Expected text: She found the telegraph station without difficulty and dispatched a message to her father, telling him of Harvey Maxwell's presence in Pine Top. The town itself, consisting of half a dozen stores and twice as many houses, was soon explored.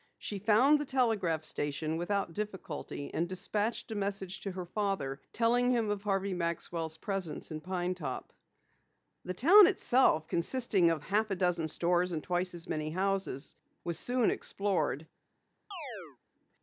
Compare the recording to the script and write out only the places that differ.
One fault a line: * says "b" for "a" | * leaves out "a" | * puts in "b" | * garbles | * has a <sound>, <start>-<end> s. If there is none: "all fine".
* has a chirp, 15.7-16.2 s